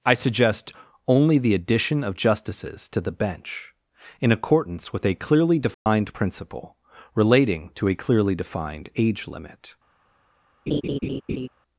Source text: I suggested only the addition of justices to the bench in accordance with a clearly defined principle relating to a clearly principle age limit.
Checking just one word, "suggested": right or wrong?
wrong